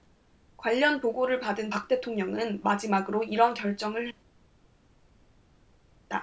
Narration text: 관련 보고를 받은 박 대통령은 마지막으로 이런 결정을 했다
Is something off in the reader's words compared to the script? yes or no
no